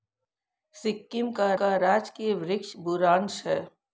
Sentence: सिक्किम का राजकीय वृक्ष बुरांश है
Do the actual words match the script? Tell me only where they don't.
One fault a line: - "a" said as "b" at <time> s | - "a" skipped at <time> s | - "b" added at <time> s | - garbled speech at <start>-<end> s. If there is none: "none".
- "का" added at 1.5 s